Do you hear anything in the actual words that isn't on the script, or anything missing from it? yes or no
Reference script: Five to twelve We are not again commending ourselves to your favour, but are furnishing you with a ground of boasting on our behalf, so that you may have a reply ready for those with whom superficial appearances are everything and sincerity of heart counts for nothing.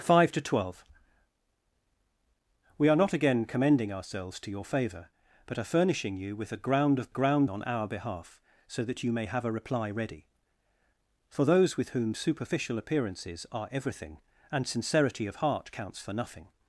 yes